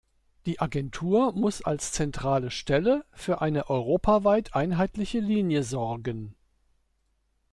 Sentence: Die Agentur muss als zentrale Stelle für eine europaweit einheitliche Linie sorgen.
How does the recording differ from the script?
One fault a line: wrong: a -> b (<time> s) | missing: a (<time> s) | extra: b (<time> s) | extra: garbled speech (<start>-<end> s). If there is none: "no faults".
no faults